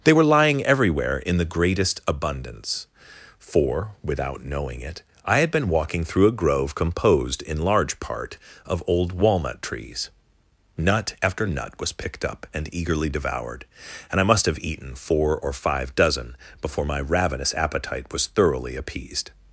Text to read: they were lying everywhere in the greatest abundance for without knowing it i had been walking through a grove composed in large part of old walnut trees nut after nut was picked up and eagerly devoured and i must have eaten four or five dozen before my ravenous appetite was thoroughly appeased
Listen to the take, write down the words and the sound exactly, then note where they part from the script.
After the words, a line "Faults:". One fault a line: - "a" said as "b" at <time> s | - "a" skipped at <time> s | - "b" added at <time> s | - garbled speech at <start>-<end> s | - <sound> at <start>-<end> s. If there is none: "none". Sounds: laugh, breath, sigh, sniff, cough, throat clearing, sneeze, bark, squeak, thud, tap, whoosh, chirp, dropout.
they were lying everywhere in the greatest abundance for without knowing it i had been walking through a grove composed in large part of old walnut trees nut after nut was picked up and eagerly devoured and i must have eaten four or five dozen before my ravenous appetite was thoroughly appeased
Faults:
none